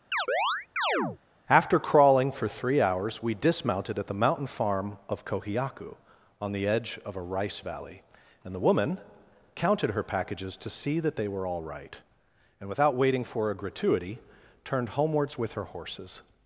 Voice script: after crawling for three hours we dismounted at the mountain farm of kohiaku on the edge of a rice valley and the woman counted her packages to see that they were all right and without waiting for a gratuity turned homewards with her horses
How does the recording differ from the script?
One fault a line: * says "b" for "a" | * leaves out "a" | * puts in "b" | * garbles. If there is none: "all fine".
all fine